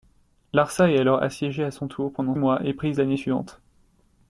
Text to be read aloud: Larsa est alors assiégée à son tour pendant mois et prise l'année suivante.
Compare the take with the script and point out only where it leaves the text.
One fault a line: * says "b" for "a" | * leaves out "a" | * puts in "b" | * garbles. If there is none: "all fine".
all fine